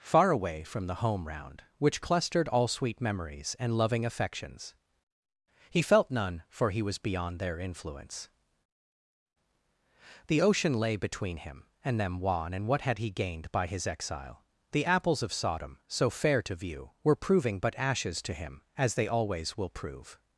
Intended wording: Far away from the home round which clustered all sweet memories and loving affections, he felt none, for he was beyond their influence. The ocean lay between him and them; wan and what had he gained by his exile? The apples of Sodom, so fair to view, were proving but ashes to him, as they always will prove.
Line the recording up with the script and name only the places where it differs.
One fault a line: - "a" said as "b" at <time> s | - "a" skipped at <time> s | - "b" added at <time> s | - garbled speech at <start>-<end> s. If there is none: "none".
none